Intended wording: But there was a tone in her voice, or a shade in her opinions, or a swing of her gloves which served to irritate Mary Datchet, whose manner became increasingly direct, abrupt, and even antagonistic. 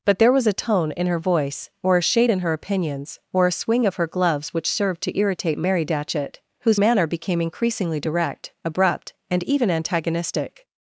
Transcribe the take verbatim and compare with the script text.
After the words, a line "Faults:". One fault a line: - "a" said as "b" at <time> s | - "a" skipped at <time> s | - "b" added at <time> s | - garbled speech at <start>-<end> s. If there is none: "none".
But there was a tone in her voice, or a shade in her opinions, or a swing of her gloves which served to irritate Mary Datchet, whose manner became increasingly direct, abrupt, and even antagonistic.
Faults:
none